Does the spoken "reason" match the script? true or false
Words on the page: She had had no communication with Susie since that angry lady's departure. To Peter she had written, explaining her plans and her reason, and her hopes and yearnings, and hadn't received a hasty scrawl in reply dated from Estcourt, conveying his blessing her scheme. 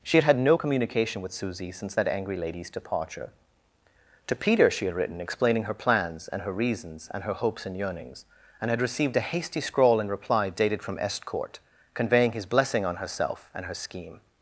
false